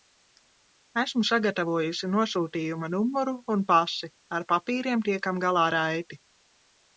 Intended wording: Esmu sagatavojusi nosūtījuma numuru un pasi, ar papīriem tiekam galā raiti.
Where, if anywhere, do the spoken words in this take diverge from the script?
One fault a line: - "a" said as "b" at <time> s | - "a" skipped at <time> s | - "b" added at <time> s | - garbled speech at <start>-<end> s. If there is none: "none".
none